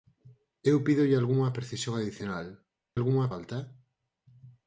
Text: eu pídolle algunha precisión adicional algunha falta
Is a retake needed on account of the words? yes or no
no